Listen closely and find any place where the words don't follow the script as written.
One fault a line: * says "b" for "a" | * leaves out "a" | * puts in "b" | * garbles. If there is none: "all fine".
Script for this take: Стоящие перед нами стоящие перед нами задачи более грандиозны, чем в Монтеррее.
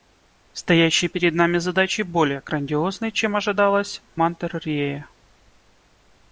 * leaves out "стоящие перед нами"
* puts in "ожидалось"